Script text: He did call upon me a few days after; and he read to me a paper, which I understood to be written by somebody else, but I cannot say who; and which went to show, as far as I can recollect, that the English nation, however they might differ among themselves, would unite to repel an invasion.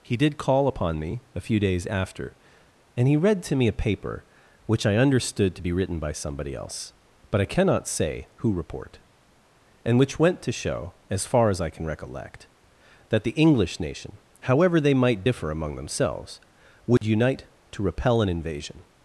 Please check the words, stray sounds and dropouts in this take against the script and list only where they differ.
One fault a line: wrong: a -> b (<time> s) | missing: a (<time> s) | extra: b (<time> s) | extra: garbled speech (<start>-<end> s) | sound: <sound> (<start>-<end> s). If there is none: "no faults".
extra: report (8.5 s)
sound: dropout (17.0-17.0 s)